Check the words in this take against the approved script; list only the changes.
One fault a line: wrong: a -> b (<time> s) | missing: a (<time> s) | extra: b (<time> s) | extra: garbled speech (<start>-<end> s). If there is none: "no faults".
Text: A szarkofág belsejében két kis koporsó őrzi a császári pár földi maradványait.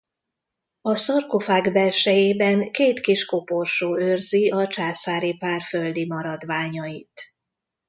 no faults